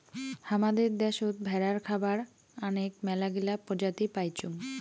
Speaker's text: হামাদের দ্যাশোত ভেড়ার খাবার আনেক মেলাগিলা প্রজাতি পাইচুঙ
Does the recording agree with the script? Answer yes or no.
yes